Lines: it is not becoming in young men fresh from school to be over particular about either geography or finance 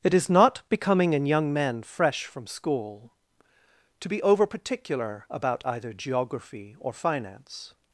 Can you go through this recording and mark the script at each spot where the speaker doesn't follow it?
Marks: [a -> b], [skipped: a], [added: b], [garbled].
it is not becoming in young men fresh from school to be over particular about either geography or finance